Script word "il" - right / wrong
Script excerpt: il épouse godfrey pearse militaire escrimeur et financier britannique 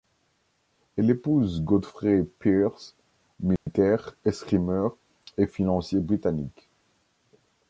wrong